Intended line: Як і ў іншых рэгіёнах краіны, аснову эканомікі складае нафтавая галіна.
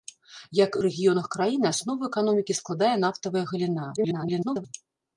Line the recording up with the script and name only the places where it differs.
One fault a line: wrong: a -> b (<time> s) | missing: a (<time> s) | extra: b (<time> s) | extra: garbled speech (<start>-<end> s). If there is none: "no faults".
missing: ў іншых (0.8 s)
extra: garbled speech (4.0-4.7 s)